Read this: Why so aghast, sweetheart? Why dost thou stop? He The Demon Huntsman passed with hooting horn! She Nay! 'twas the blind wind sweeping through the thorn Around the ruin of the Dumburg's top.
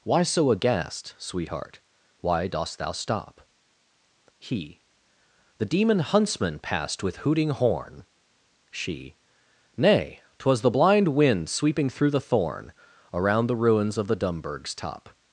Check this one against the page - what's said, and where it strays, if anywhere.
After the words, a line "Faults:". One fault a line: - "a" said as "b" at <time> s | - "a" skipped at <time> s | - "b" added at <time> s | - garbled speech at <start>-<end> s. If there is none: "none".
Why so aghast, sweetheart? Why dost thou stop? He The Demon Huntsman passed with hooting horn! She Nay! 'twas the blind wind sweeping through the thorn Around the ruins of the Dumburg's top.
Faults:
- "ruin" said as "ruins" at 13.6 s